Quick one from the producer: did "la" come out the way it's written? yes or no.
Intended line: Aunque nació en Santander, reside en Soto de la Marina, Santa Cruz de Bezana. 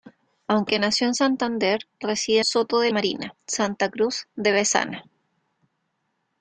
no